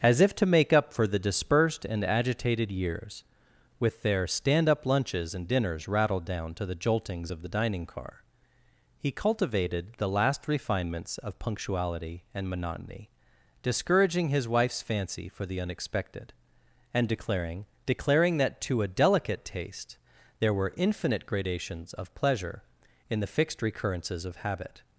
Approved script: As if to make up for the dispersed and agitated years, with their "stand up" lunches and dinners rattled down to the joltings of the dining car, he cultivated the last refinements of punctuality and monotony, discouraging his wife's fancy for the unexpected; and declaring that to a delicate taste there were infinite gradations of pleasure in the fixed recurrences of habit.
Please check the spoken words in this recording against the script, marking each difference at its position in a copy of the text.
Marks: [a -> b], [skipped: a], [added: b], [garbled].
As if to make up for the dispersed and agitated years, with their "stand up" lunches and dinners rattled down to the joltings of the dining car, he cultivated the last refinements of punctuality and monotony, discouraging his wife's fancy for the unexpected; and declaring [added: declaring] that to a delicate taste there were infinite gradations of pleasure in the fixed recurrences of habit.